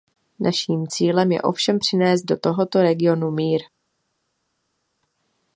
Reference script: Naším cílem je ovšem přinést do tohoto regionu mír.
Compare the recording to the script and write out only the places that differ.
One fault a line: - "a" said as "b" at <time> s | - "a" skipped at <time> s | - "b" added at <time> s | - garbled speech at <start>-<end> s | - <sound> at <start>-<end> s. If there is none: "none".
none